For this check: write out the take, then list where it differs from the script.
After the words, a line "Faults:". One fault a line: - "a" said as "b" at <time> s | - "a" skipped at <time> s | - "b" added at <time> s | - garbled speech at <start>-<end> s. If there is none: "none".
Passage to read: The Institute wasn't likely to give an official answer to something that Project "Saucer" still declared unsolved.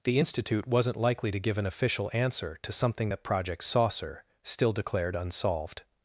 The Institute wasn't likely to give an official answer to something that Project "Saucer" still declared unsolved.
Faults:
none